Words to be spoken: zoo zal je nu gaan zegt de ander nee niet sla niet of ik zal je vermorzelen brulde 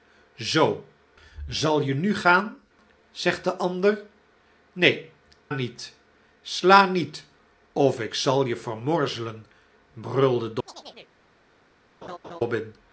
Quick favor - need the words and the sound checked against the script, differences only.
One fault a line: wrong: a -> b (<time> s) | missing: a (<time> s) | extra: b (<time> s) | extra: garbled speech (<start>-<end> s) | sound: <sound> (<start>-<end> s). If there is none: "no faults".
sound: chirp (10.7-11.1 s)
sound: laugh (12.0-12.4 s)